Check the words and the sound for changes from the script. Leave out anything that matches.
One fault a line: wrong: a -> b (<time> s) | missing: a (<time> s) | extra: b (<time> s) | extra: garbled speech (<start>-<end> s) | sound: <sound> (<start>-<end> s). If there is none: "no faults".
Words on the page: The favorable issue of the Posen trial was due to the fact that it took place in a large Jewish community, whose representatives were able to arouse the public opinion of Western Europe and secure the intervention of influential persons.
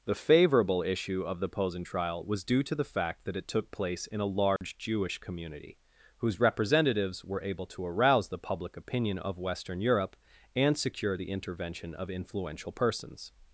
sound: dropout (4.6-4.6 s)